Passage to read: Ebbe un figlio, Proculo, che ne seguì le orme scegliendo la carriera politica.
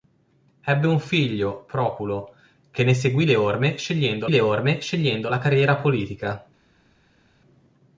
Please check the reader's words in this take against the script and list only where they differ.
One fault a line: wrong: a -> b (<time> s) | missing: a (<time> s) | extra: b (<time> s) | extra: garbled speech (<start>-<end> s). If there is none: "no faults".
extra: le orme scegliendo (4.3 s)